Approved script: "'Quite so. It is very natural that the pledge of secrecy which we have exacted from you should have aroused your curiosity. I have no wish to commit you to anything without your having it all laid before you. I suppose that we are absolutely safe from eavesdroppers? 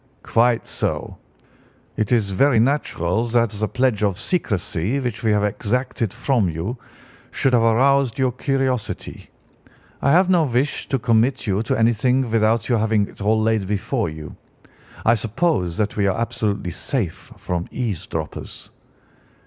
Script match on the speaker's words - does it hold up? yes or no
yes